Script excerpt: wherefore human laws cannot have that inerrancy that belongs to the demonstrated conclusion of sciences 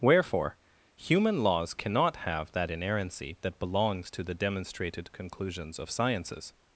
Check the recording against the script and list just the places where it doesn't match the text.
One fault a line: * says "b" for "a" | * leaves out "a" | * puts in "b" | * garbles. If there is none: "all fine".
* says "conclusions" for "conclusion"